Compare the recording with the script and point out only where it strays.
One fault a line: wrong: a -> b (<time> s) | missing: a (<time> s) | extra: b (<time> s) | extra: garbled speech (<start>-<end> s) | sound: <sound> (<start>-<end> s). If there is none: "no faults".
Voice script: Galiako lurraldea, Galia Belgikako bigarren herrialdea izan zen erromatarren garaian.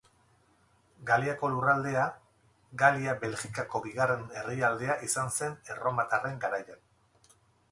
no faults